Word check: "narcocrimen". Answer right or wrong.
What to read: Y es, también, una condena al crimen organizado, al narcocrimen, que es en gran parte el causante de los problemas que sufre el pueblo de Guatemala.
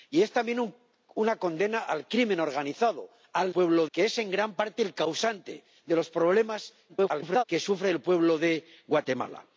wrong